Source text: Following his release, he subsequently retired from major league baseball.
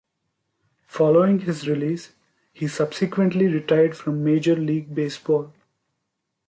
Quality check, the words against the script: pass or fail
pass